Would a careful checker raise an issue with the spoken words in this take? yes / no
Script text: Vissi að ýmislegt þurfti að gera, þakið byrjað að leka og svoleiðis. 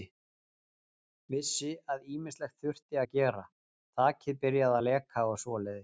no